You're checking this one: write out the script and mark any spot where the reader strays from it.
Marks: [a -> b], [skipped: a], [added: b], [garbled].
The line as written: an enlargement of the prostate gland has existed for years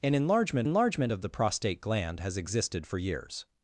an enlargement [added: enlargement] of the prostate gland has existed for years